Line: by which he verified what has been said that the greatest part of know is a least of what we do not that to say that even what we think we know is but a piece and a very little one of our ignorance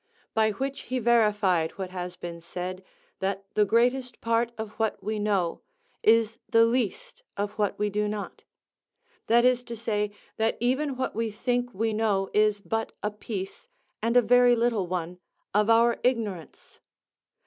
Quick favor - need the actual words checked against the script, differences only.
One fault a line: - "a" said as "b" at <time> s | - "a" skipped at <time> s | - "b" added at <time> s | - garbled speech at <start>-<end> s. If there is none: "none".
- "what we" added at 4.8 s
- "a" said as "the" at 6.5 s
- "is" added at 9.4 s